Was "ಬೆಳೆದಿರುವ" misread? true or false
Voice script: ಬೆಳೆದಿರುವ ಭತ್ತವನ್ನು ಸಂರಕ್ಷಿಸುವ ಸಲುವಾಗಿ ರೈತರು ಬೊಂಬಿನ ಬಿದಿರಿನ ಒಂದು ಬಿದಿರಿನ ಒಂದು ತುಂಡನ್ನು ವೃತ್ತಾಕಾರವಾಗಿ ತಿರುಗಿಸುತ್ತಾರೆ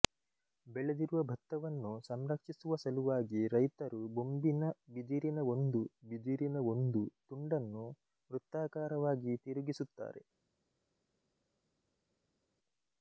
false